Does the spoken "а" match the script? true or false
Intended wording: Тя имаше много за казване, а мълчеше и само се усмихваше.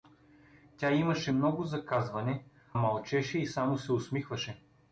false